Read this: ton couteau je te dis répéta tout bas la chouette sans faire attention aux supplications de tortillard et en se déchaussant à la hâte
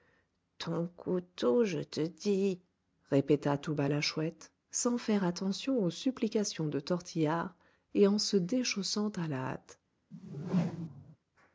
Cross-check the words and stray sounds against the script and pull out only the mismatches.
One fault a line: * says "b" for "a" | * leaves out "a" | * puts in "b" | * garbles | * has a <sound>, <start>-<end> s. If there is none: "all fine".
* has a whoosh, 10.1-11.2 s